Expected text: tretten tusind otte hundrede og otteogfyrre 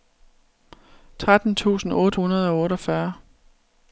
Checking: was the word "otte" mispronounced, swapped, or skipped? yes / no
no